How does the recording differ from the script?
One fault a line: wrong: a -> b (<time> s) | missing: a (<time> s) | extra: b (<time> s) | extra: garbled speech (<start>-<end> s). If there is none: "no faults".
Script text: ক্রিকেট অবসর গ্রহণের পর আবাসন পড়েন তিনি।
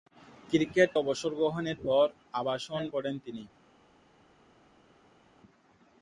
no faults